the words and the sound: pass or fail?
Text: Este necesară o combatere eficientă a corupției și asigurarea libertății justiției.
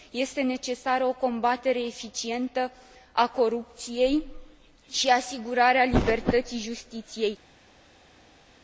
pass